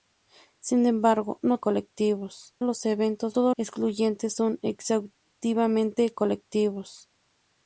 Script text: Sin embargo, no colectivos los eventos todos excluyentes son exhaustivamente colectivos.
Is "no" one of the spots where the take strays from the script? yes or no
no